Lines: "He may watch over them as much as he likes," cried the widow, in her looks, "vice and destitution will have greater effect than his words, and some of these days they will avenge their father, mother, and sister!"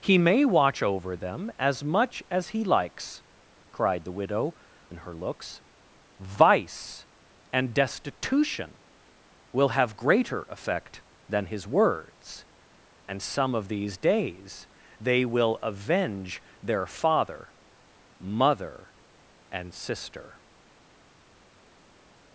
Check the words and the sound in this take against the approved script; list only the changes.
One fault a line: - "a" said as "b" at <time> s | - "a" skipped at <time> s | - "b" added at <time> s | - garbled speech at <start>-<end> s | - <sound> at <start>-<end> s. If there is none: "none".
none